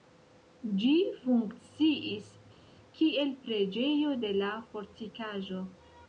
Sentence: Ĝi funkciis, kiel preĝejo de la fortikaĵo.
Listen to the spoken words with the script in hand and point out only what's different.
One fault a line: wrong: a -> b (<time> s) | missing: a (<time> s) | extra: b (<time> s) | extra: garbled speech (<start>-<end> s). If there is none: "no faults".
no faults